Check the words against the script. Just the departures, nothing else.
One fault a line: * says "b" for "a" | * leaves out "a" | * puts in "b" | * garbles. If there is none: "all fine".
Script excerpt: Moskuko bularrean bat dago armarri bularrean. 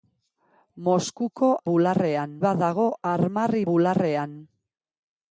all fine